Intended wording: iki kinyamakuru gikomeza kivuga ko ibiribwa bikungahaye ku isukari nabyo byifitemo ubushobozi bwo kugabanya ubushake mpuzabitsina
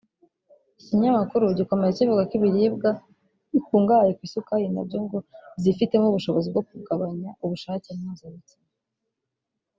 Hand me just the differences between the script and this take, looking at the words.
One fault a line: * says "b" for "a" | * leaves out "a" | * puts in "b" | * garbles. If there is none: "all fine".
* puts in "ngo"